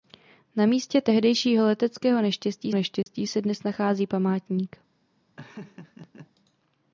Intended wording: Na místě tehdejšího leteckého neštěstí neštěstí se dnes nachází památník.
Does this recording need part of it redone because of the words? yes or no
no